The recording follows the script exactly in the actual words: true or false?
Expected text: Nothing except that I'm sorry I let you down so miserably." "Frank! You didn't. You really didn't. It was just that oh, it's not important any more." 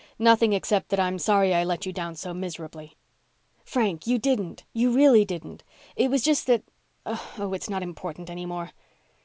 true